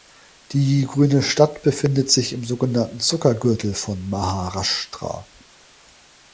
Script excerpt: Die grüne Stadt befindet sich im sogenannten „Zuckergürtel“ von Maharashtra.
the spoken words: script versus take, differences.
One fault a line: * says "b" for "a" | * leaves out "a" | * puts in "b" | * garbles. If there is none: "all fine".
all fine